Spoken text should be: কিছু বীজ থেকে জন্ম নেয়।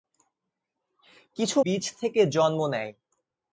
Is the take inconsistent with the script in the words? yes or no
no